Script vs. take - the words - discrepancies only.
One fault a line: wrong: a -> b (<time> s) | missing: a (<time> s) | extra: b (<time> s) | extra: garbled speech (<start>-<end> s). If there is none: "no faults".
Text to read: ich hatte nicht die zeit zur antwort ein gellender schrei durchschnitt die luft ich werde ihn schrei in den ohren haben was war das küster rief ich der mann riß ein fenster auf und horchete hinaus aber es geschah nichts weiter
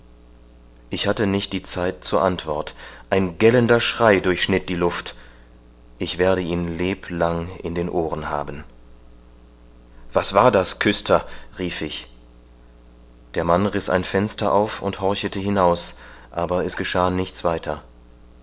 wrong: schrei -> leblang (6.8 s)